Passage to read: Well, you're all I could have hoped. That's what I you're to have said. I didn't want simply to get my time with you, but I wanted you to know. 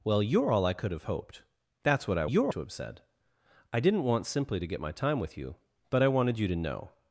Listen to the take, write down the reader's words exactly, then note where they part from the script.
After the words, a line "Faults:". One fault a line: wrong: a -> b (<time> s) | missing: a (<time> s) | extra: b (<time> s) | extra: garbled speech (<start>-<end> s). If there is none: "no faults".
Well, you're all I could have hoped. That's what I you're to have said. I didn't want simply to get my time with you, but I wanted you to know.
Faults:
no faults